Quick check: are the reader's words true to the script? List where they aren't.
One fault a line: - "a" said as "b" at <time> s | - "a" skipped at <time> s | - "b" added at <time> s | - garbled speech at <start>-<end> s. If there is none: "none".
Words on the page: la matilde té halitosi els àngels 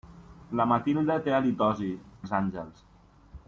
none